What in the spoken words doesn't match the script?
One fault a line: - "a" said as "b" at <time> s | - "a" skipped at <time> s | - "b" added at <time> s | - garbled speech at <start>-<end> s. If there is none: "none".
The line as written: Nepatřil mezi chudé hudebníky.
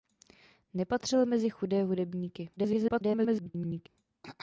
- garbled speech at 2.6-3.9 s